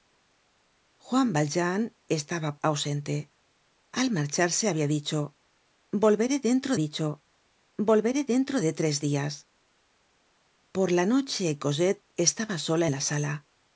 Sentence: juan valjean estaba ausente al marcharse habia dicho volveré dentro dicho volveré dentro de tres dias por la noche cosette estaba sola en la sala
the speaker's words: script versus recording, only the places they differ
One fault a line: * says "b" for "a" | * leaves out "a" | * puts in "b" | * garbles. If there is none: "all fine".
all fine